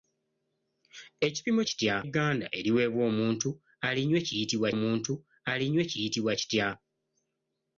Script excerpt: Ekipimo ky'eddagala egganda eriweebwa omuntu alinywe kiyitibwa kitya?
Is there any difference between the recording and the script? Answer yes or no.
yes